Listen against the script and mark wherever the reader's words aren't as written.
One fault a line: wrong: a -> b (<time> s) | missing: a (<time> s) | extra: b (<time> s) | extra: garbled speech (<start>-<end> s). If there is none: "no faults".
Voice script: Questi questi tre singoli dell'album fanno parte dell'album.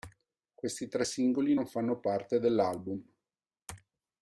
missing: questi (0.9 s)
wrong: dell'album -> non (1.5 s)